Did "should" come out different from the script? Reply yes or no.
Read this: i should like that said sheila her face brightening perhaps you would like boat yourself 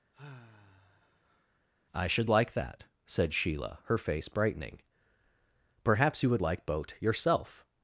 no